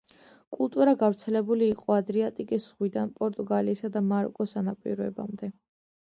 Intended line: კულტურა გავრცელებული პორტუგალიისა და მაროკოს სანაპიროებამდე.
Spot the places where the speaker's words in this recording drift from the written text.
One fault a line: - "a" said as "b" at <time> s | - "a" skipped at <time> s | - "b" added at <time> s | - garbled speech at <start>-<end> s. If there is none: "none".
- "იყო ადრიატიკის ზღვიდან" added at 1.7 s